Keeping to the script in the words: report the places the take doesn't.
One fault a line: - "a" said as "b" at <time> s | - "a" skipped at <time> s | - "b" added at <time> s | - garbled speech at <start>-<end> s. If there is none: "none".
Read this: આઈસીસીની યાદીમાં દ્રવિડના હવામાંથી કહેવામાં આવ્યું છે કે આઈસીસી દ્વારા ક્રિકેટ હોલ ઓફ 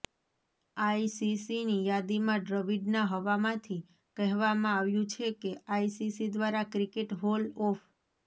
none